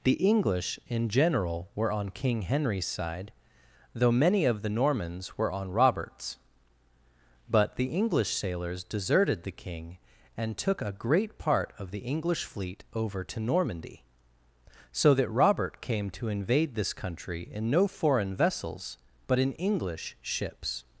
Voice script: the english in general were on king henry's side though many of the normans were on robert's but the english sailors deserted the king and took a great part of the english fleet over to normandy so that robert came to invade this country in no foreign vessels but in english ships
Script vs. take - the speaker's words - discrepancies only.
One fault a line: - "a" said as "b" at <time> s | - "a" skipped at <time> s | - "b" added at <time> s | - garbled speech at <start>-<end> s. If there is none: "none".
none